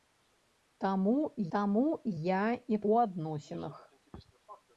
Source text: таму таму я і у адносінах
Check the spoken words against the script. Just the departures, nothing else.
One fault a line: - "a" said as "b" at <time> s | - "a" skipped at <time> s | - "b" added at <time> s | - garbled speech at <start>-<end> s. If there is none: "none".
none